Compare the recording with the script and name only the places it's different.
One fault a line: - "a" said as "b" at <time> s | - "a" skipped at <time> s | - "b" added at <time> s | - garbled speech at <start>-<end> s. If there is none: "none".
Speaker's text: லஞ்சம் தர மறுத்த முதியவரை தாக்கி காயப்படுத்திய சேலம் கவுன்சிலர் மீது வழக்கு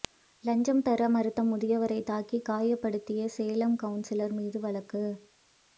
none